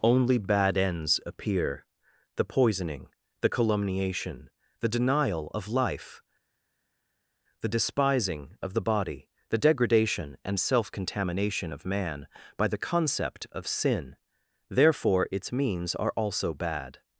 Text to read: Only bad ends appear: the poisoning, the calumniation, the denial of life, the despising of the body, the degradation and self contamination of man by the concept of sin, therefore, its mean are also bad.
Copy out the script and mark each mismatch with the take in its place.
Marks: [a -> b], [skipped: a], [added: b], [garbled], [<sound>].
Only bad ends appear: the poisoning, the calumniation, the denial of life, the despising of the body, the degradation and self contamination of man by the concept of sin, therefore, its [mean -> means] are also bad.